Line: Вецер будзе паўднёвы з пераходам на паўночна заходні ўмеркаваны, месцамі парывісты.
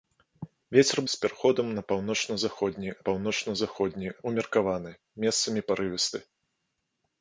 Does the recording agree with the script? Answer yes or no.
no